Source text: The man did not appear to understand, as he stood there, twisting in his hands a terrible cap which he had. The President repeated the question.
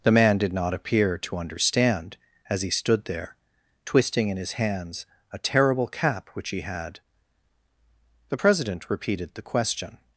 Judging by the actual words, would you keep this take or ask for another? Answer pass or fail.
pass